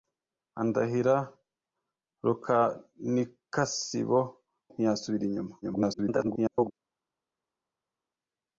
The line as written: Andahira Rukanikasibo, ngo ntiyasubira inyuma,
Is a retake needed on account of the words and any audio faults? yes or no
yes